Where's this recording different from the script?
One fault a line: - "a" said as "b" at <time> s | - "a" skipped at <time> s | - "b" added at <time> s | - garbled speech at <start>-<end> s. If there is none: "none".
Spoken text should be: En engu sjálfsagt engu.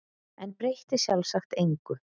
- "engu" said as "breytti" at 0.6 s